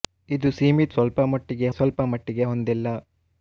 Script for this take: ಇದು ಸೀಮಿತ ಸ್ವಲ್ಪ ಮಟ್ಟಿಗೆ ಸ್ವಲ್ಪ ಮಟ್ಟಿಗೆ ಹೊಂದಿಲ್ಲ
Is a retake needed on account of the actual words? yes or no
no